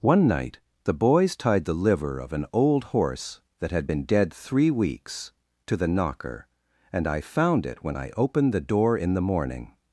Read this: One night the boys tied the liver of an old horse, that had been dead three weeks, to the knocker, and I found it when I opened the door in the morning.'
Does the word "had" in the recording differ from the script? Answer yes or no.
no